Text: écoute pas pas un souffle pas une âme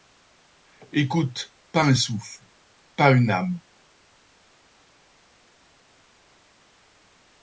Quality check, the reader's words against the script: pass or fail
fail